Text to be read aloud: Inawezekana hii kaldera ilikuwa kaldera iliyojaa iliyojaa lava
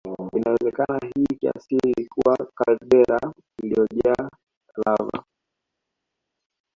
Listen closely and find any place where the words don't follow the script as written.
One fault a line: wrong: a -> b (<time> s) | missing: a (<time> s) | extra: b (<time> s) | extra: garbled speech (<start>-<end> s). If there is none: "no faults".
wrong: kaldera -> kiasili (1.3 s)
missing: iliyojaa (4.3 s)